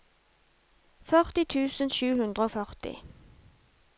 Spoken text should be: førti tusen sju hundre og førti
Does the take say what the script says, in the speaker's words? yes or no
yes